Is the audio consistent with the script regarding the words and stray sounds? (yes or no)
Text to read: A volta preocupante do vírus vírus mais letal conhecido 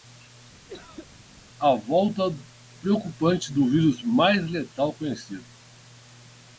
no